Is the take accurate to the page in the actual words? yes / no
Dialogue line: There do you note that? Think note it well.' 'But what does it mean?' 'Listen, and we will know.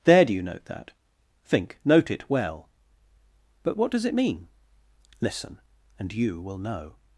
no